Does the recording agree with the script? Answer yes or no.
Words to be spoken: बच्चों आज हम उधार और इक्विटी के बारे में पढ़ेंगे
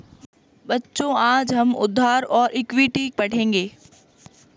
no